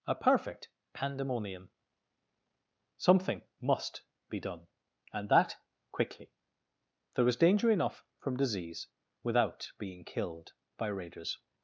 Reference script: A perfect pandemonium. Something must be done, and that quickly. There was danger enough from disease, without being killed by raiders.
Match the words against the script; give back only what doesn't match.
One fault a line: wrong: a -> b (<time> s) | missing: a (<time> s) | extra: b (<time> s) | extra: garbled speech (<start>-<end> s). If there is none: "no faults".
no faults